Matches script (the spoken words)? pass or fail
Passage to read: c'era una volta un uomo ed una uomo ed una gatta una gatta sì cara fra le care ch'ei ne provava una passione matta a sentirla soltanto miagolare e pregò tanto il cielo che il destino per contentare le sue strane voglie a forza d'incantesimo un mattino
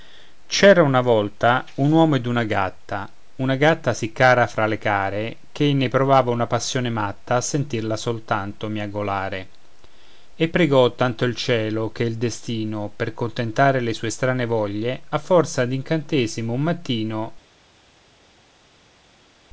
fail